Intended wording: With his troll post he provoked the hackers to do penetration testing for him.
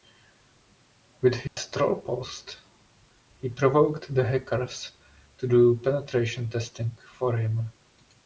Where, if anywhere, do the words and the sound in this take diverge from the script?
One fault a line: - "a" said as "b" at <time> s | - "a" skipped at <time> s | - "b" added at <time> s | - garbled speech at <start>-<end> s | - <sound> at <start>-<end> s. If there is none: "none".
- dropout at 1.5-1.6 s